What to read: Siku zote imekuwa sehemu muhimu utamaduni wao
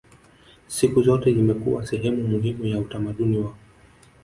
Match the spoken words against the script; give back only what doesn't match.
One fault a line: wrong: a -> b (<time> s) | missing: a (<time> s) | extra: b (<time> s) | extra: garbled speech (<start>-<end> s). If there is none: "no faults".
extra: ya (2.7 s)